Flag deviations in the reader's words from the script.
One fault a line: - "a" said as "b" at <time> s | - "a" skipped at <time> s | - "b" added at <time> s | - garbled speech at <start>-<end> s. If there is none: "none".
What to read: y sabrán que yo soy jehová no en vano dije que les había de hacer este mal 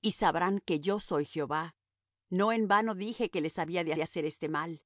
- "de" added at 3.9 s